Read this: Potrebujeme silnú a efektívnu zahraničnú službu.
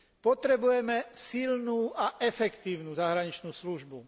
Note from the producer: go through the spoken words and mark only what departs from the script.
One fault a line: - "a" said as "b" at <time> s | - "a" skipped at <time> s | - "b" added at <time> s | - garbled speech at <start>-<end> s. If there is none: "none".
none